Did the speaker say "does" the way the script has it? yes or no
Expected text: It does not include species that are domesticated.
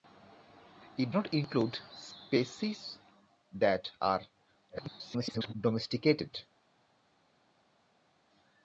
no